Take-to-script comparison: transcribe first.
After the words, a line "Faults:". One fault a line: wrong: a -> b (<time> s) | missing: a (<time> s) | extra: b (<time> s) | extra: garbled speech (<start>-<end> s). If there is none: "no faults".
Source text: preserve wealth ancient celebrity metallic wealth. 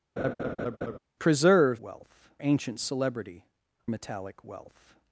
preserve wealth ancient celebrity metallic wealth.
Faults:
no faults